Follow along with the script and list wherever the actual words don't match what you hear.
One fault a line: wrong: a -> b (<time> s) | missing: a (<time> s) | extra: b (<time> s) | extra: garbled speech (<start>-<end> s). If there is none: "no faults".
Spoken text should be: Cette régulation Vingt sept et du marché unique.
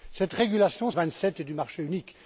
no faults